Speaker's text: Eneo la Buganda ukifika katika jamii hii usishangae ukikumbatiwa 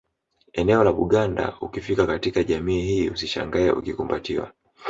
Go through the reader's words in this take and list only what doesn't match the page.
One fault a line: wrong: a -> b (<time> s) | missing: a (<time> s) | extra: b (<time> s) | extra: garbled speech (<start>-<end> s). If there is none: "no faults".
no faults